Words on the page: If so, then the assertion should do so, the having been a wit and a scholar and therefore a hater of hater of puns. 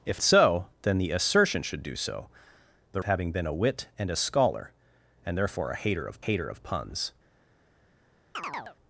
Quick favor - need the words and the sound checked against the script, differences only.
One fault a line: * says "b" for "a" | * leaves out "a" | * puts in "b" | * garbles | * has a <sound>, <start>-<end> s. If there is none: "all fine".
* has a chirp, 8.3-8.8 s